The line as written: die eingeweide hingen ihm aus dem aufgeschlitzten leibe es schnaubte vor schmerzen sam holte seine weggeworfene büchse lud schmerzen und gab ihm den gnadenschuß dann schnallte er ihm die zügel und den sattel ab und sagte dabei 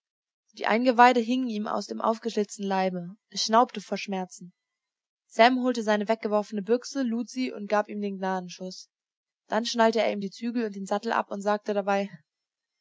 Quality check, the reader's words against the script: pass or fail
fail